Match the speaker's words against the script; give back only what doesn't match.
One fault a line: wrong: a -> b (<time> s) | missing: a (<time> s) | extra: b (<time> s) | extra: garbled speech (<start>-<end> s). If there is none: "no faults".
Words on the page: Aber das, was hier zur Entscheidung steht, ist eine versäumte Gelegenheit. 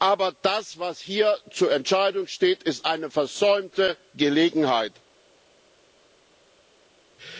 no faults